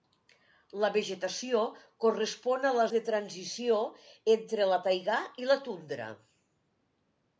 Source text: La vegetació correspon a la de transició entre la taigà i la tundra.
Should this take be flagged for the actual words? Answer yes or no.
no